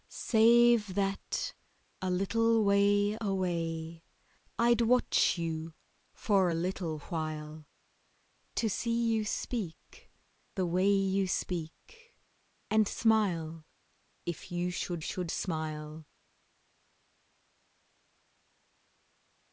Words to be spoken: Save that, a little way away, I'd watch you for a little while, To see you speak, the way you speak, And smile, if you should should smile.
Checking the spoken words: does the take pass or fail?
pass